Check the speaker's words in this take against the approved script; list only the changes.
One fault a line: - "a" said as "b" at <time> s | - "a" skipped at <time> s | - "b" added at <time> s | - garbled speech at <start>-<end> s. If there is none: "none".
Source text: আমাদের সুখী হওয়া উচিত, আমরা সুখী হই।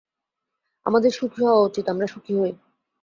none